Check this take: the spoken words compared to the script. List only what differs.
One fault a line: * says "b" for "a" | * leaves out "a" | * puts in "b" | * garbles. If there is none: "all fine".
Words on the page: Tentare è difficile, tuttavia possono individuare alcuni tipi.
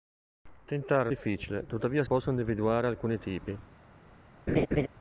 all fine